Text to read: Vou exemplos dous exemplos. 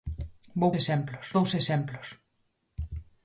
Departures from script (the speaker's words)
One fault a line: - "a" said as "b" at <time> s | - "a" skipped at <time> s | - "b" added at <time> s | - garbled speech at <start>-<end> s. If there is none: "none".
none